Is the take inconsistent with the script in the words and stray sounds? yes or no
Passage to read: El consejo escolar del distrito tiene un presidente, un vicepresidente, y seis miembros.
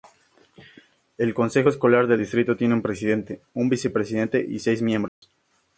yes